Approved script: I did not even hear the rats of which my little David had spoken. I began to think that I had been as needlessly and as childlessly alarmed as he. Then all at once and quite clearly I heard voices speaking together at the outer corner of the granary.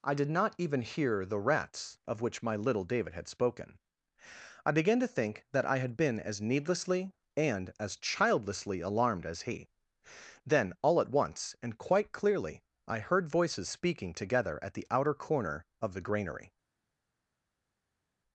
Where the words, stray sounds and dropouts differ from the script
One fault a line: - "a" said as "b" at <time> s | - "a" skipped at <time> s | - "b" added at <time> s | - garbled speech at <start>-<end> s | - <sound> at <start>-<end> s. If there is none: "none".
none